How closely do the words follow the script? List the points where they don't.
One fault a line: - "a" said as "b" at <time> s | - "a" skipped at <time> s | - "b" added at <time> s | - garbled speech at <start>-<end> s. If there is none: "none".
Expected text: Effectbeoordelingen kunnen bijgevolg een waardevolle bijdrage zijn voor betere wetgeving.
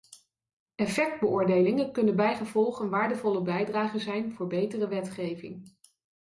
none